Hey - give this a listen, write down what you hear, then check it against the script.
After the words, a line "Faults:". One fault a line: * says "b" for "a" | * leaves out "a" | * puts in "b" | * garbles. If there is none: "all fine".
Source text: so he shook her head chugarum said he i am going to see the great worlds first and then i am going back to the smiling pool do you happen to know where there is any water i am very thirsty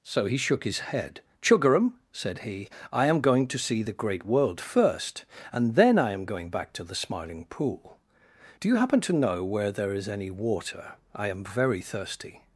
so he shook his head chugarum said he i am going to see the great world first and then i am going back to the smiling pool do you happen to know where there is any water i am very thirsty
Faults:
* says "his" for "her"
* says "world" for "worlds"